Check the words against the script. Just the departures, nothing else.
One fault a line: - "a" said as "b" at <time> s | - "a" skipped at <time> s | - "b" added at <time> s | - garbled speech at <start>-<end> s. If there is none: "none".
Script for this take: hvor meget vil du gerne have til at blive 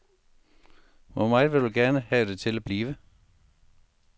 - "det" added at 2.3 s